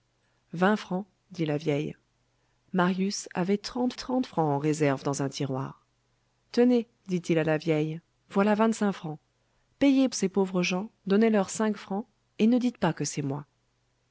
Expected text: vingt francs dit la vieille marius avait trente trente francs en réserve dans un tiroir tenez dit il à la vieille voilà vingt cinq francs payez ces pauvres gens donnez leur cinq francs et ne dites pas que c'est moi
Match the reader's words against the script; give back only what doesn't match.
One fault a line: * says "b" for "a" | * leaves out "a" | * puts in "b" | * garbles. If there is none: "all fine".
all fine